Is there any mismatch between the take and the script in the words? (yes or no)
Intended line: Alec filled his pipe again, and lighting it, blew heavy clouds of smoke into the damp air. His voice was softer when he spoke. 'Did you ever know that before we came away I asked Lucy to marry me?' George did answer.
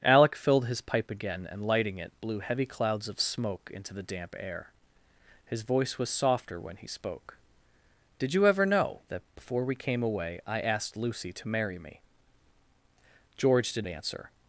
no